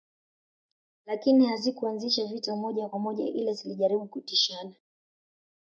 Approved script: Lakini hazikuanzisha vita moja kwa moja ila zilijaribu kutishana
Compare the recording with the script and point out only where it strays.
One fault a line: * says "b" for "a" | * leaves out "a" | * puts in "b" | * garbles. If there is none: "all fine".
all fine